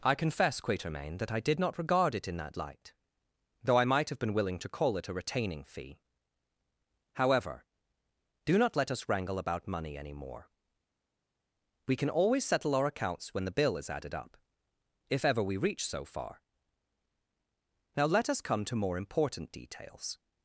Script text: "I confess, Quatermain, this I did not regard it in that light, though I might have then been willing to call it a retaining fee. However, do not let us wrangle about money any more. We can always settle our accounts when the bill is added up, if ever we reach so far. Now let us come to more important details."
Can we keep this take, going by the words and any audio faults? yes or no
no